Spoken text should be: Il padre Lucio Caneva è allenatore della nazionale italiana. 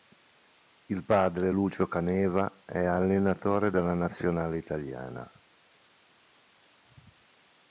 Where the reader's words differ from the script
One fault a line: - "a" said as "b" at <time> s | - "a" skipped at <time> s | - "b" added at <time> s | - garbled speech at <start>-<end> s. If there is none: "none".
none